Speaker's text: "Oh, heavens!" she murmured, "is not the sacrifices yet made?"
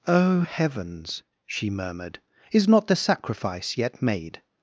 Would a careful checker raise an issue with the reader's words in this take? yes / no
yes